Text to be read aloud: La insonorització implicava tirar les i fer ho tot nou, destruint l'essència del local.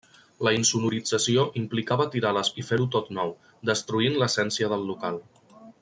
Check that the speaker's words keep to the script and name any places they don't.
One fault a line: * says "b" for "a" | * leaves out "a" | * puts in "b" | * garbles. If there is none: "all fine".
all fine